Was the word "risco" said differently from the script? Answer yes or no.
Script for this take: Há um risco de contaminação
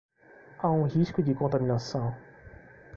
no